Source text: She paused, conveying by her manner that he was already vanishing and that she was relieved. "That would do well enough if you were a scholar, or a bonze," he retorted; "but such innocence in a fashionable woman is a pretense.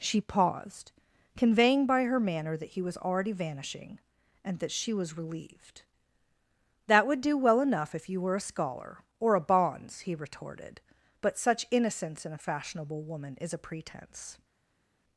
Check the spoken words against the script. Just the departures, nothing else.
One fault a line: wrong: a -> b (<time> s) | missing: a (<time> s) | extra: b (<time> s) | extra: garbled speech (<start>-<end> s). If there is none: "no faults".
no faults